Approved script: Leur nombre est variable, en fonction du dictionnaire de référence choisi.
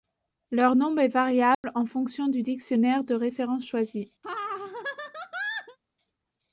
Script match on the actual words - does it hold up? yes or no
yes